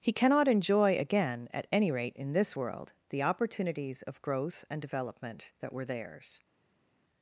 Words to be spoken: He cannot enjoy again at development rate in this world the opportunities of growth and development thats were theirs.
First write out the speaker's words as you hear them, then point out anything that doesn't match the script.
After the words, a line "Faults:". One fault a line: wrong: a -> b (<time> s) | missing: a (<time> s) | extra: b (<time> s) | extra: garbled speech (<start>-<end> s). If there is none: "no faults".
He cannot enjoy again at any rate in this world the opportunities of growth and development that were theirs.
Faults:
wrong: development -> any (1.7 s)
wrong: thats -> that (5.6 s)